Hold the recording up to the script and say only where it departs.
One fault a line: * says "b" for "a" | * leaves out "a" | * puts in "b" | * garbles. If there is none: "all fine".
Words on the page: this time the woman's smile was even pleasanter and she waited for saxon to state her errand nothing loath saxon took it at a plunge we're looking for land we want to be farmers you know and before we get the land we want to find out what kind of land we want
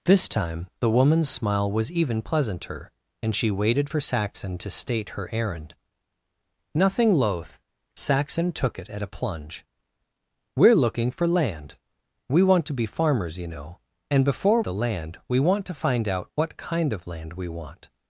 * leaves out "we get"